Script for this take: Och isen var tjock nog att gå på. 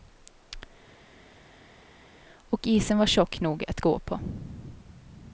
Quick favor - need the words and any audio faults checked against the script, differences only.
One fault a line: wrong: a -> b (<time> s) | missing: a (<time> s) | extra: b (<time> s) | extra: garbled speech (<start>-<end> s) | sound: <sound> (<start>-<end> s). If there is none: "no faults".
no faults